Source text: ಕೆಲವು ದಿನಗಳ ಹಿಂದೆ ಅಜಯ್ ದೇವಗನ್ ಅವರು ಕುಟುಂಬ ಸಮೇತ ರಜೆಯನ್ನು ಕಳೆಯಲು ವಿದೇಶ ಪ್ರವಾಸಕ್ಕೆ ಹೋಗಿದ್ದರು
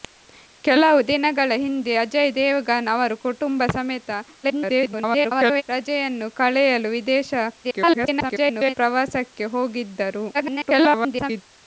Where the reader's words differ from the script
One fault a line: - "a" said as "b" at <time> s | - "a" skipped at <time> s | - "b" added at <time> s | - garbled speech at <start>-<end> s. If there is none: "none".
- garbled speech at 4.4-5.6 s
- garbled speech at 7.6-8.8 s
- garbled speech at 10.3-11.4 s